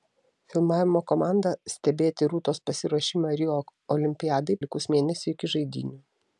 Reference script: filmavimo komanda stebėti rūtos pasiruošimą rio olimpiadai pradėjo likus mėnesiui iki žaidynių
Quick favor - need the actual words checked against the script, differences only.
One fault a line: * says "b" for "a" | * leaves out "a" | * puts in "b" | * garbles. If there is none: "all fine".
* leaves out "pradėjo"